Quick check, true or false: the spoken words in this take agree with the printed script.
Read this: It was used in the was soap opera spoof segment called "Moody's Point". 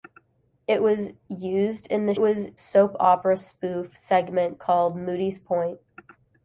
true